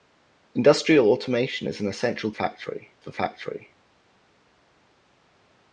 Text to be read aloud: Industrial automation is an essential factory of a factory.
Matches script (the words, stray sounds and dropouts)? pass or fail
pass